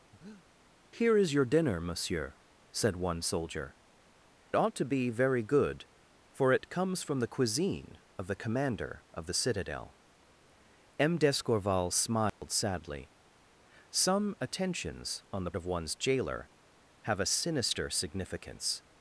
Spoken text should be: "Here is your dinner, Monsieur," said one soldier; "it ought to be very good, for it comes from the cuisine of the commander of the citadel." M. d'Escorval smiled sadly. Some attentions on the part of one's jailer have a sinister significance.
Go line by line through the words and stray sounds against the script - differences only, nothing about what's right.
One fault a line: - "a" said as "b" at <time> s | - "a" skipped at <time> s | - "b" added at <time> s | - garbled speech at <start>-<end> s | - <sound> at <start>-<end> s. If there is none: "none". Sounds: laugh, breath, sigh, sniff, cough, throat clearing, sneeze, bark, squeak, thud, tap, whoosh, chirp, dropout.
- breath at 0.1-0.4 s
- "it" skipped at 3.8 s
- dropout at 12.3-12.4 s
- "part" skipped at 15.5 s